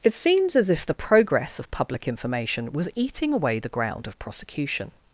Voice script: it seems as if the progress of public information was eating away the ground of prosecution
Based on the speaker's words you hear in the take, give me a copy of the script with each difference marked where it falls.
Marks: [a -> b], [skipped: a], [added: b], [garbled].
it seems as if the progress of public information was eating away the ground of prosecution